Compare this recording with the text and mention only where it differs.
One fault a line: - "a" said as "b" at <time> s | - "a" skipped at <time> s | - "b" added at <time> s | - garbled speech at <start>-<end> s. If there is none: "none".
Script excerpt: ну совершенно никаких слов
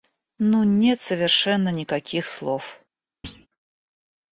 - "нет" added at 0.6 s